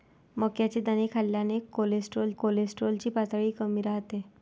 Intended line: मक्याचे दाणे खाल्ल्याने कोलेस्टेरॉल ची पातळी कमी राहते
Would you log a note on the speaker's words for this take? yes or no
yes